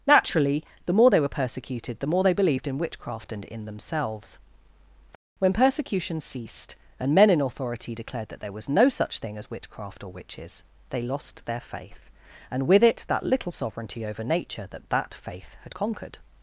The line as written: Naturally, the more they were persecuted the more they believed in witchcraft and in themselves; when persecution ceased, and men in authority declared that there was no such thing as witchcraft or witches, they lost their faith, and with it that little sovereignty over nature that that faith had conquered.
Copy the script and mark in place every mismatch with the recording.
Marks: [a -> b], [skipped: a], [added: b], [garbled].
Naturally, the more they were persecuted the more they believed in witchcraft and in themselves; when persecution ceased, and men in authority declared that there was no such thing as witchcraft or witches, they lost their faith, and with it that little sovereignty over nature that that faith had conquered.